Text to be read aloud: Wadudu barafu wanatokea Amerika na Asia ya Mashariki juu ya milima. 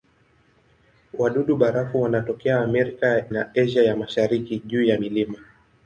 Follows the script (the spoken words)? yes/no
yes